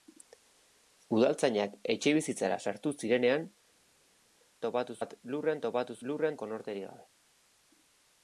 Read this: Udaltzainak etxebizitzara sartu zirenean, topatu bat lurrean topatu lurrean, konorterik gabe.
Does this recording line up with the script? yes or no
yes